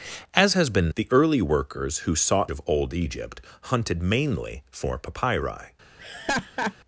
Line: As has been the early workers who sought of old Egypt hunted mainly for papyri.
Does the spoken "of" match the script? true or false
true